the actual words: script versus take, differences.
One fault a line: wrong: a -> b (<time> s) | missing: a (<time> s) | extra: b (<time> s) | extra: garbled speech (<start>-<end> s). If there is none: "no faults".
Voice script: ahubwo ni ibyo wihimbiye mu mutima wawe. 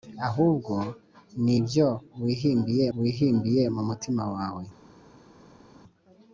extra: wihimbiye (3.0 s)